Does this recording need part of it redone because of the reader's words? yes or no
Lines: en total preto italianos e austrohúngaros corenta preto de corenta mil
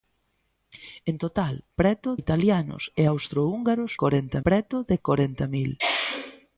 no